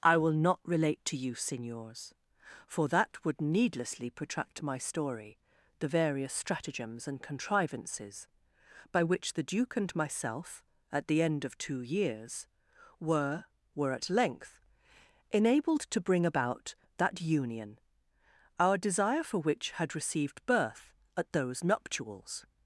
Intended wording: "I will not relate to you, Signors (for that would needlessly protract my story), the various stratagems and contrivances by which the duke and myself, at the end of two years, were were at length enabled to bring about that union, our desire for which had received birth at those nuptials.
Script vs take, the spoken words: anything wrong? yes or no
no